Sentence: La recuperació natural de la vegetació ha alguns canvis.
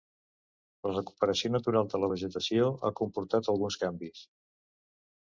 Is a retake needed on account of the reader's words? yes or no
yes